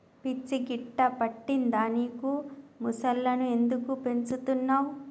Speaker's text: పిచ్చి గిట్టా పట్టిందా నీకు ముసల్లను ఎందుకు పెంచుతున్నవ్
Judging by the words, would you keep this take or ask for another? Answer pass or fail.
pass